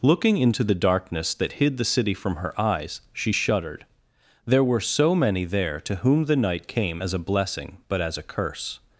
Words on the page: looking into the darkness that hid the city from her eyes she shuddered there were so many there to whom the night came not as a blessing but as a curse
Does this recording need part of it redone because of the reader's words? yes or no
yes